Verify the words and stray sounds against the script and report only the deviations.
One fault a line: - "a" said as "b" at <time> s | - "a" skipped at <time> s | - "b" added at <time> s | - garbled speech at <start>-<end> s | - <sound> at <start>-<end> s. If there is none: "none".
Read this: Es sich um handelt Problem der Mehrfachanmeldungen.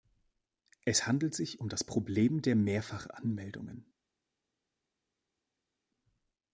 - "handelt" added at 1.1 s
- "handelt" said as "das" at 1.7 s